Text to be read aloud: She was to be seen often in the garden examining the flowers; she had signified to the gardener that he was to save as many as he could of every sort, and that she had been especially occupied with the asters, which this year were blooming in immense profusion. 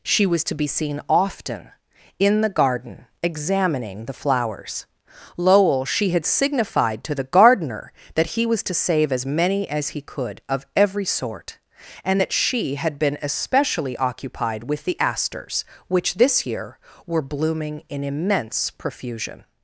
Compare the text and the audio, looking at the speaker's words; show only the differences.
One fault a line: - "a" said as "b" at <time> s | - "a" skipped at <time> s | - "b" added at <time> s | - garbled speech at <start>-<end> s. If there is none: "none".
- "lowell" added at 5.4 s